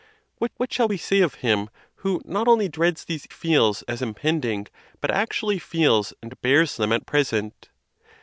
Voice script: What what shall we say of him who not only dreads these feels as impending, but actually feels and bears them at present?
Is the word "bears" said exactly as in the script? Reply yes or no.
yes